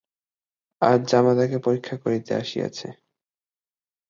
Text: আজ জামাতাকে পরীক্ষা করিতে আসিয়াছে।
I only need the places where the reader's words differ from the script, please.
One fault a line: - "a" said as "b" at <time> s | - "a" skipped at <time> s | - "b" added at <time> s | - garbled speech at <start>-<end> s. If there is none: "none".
none